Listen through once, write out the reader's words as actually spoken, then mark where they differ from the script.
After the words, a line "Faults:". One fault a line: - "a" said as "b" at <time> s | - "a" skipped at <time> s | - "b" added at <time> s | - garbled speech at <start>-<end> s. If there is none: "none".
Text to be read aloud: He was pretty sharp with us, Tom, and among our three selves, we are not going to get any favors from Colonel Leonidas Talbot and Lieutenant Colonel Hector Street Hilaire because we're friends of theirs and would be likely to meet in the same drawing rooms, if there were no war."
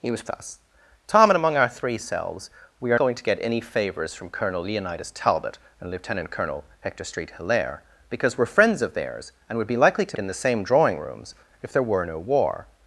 He was us, Tom, and among our three selves, we are going to get any favors from Colonel Leonidas Talbot and Lieutenant Colonel Hector Street Hilaire because we're friends of theirs and would be likely to in the same drawing rooms, if there were no war."
Faults:
- "pretty sharp with" skipped at 0.2 s
- "not" skipped at 3.0 s
- "meet" skipped at 10.2 s